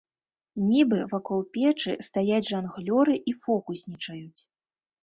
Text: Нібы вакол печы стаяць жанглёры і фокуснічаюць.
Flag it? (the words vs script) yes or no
no